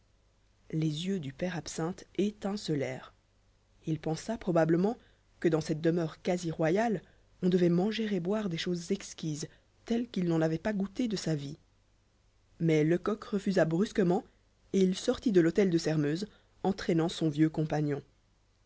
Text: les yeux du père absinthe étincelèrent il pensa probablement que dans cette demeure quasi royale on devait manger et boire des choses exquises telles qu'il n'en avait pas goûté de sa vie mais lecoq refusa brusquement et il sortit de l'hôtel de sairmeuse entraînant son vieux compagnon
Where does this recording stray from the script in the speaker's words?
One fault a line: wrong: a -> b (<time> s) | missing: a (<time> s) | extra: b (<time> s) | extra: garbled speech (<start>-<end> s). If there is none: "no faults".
no faults